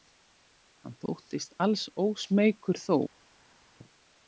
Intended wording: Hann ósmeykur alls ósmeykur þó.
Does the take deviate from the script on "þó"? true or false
false